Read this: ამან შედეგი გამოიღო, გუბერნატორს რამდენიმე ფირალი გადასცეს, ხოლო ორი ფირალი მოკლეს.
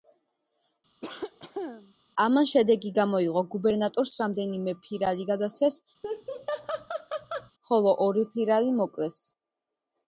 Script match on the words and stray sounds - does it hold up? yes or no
no